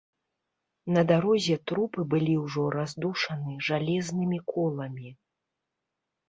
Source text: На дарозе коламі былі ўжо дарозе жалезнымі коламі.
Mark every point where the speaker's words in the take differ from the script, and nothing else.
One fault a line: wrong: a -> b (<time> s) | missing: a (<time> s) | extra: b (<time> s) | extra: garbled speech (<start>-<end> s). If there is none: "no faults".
wrong: коламі -> трупы (1.7 s)
wrong: дарозе -> раздушаны (2.8 s)